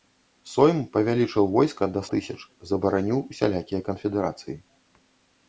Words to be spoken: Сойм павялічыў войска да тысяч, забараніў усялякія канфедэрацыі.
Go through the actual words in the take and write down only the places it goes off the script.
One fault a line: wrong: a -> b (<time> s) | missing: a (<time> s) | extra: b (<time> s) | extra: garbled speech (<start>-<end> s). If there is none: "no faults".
no faults